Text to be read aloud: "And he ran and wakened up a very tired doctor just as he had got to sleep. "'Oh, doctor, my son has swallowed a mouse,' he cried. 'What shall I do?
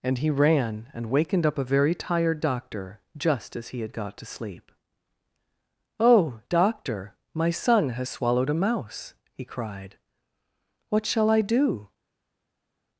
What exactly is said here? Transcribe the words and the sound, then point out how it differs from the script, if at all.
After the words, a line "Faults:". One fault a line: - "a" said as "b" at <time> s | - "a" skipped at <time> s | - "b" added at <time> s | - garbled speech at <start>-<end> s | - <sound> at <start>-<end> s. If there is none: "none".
"And he ran and wakened up a very tired doctor just as he had got to sleep. "'Oh, doctor, my son has swallowed a mouse,' he cried. 'What shall I do?
Faults:
none